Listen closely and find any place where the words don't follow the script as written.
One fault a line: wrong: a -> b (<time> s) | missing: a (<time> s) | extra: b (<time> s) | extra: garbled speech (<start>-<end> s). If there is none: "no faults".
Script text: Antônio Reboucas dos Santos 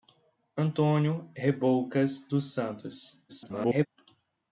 extra: garbled speech (3.3-3.9 s)